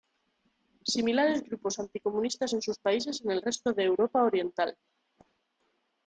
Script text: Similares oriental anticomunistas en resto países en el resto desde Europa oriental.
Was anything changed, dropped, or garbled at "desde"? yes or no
yes